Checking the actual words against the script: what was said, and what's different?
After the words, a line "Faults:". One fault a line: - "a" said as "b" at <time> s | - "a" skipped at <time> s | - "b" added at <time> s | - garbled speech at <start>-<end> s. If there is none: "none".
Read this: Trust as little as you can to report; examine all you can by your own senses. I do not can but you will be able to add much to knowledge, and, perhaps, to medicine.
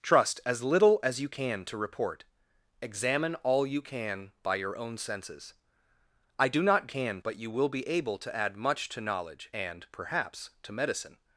Trust as little as you can to report; examine all you can by your own senses. I do not can but you will be able to add much to knowledge, and, perhaps, to medicine.
Faults:
none